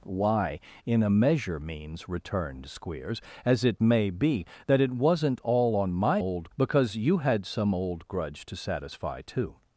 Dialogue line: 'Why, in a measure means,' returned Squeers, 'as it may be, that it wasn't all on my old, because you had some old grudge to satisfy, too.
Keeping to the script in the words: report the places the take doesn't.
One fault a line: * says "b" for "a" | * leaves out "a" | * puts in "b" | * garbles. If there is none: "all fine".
all fine